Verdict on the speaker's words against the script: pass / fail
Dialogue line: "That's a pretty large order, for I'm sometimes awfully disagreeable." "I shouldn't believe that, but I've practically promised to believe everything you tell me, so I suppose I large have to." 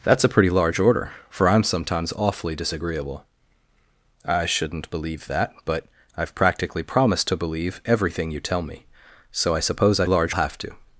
pass